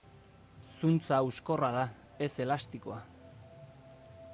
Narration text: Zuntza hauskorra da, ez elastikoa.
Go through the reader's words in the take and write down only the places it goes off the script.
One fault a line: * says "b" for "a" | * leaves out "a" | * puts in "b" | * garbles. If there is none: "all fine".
all fine